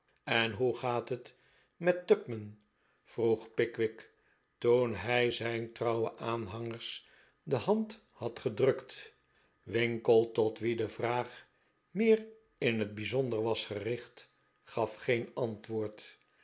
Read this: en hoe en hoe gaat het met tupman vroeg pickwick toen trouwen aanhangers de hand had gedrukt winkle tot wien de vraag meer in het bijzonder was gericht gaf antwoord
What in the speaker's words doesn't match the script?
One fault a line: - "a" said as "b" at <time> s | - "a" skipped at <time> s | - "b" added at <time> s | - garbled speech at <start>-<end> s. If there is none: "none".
- "en hoe" skipped at 0.8 s
- "hij zijn" added at 5.0 s
- "geen" added at 15.0 s